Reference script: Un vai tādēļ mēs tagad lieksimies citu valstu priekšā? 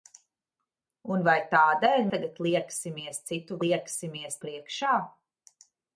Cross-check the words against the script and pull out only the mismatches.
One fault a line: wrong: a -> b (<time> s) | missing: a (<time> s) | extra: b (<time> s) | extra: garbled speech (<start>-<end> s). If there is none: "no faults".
missing: mēs (2.1 s)
wrong: valstu -> lieksimies (3.6 s)